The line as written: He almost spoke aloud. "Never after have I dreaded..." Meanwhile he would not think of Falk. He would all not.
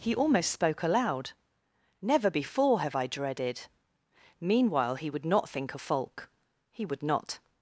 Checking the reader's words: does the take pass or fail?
fail